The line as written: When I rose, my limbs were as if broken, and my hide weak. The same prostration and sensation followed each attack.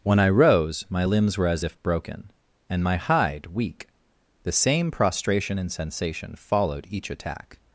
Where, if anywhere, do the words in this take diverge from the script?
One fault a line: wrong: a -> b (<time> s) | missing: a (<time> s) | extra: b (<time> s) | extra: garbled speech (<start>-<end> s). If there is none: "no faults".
no faults